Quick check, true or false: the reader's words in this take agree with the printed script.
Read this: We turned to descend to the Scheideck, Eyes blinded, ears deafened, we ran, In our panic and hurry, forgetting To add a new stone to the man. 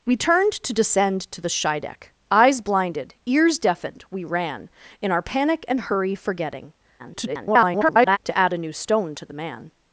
false